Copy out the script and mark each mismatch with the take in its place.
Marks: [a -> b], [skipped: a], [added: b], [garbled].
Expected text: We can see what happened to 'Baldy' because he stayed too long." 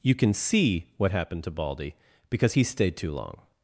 [We -> You] can see what happened to 'Baldy' because he stayed too long."